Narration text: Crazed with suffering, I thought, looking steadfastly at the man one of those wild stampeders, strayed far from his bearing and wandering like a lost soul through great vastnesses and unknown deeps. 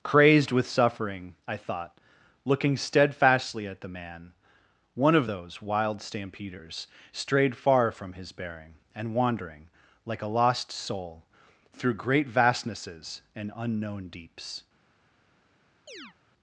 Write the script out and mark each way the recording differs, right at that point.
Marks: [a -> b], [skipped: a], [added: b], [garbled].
Crazed with suffering, I thought, looking steadfastly at the man one of those wild stampeders, strayed far from his bearing and wandering like a lost soul through great vastnesses and unknown deeps.